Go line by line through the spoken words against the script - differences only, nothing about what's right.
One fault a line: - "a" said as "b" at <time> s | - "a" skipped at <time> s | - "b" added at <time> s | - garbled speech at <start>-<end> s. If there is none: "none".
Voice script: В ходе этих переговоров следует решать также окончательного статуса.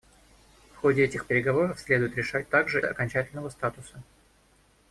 none